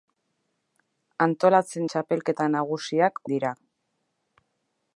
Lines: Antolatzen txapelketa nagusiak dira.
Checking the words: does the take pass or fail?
pass